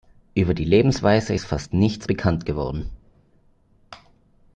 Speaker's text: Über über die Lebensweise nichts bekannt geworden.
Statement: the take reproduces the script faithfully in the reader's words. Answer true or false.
false